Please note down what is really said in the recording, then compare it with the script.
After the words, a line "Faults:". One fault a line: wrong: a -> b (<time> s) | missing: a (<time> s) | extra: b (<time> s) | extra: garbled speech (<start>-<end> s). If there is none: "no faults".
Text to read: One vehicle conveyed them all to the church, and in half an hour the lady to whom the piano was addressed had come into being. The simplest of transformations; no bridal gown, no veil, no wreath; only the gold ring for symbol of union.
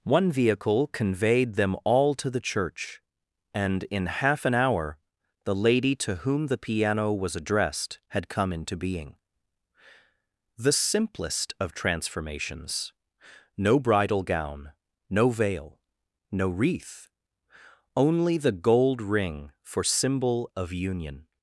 One vehicle conveyed them all to the church, and in half an hour the lady to whom the piano was addressed had come into being. The simplest of transformations; no bridal gown, no veil, no wreath; only the gold ring for symbol of union.
Faults:
no faults